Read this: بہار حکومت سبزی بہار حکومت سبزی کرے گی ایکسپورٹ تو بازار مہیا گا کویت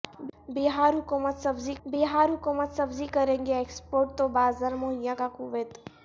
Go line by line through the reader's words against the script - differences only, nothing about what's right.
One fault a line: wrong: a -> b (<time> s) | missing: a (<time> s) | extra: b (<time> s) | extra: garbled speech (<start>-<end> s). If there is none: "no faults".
no faults